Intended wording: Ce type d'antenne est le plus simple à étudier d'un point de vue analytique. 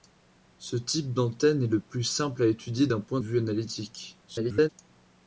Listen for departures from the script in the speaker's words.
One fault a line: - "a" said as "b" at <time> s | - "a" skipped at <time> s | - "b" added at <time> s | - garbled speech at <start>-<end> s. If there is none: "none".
- "de" skipped at 3.2 s
- garbled speech at 4.3-4.7 s